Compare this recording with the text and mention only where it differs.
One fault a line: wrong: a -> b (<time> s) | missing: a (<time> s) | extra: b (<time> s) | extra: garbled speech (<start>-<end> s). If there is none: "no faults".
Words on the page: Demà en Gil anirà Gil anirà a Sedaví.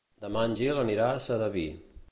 missing: Gil anirà (1.1 s)